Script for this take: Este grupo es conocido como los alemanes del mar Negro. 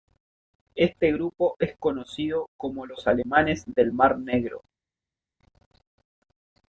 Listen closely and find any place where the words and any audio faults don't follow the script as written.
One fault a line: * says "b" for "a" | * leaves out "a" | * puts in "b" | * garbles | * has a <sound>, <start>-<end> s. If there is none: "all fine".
all fine